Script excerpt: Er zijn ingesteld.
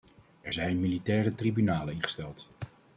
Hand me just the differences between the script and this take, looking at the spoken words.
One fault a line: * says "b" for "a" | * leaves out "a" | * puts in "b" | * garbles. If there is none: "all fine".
* puts in "militaire tribunalen"